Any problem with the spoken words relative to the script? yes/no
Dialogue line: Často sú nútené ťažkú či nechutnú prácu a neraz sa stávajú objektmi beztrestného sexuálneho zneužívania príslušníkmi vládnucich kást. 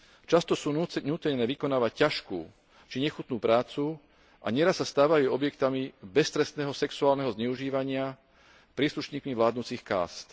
yes